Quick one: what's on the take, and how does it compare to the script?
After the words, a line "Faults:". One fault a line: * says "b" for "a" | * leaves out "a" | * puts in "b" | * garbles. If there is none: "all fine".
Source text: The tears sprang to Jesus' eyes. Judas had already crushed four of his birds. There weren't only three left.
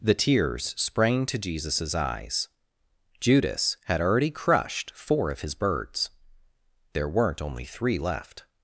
The tears sprang to Jesus' eyes. Judas had already crushed four of his birds. There weren't only three left.
Faults:
all fine